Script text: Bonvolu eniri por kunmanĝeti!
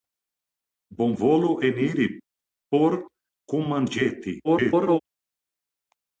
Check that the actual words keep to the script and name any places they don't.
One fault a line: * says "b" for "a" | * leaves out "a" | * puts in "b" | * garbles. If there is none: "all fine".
* garbles